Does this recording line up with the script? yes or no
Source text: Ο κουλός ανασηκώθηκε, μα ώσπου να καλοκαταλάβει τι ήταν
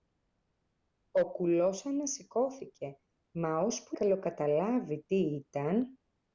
no